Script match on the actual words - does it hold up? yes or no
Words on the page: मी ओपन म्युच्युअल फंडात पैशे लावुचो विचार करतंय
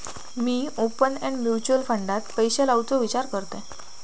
no